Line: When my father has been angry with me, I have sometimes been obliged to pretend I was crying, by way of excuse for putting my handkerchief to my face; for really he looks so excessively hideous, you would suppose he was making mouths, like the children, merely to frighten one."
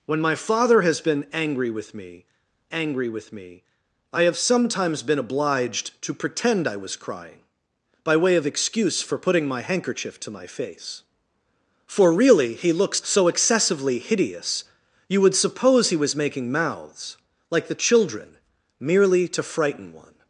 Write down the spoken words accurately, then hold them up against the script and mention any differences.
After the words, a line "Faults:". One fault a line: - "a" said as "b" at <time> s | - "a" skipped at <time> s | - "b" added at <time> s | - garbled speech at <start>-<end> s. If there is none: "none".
When my father has been angry with me angry with me, I have sometimes been obliged to pretend I was crying, by way of excuse for putting my handkerchief to my face; for really he looks so excessively hideous, you would suppose he was making mouths, like the children, merely to frighten one."
Faults:
- "angry with me" added at 2.7 s